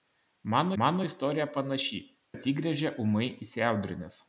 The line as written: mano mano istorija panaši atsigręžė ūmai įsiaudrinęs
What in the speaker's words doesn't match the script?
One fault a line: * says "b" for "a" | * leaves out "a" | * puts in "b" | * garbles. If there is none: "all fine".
all fine